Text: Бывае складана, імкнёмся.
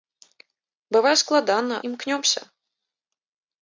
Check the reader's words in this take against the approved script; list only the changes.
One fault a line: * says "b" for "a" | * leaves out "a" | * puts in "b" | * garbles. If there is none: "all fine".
all fine